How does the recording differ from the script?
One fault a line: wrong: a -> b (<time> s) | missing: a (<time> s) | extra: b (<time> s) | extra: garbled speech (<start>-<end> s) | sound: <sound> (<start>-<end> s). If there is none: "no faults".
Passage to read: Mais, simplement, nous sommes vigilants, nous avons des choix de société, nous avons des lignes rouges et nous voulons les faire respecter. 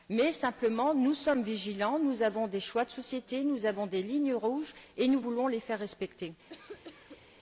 sound: cough (6.5-7.3 s)